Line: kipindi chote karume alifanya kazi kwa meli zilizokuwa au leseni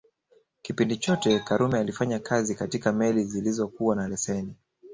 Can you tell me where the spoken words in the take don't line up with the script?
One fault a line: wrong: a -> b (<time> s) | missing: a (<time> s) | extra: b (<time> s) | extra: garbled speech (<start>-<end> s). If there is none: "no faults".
wrong: kwa -> katika (2.5 s)
wrong: au -> na (4.0 s)